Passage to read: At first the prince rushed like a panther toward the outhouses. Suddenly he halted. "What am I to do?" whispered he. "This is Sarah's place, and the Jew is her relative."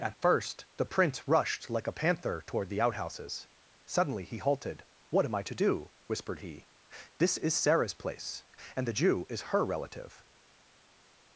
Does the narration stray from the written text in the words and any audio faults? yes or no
no